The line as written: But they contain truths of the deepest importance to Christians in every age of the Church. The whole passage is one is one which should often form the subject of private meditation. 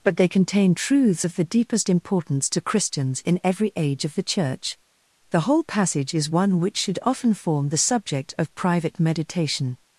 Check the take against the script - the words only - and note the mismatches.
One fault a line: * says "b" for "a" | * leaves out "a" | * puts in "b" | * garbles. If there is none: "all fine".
* leaves out "is one"